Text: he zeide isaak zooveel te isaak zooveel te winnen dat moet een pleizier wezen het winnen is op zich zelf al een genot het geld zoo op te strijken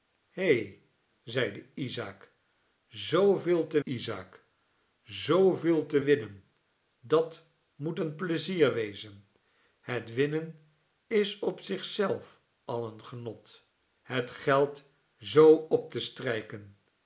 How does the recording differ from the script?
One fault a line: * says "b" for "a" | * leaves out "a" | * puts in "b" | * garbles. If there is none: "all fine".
all fine